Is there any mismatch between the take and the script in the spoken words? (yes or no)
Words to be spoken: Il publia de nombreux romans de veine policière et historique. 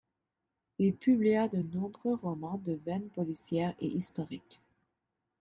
no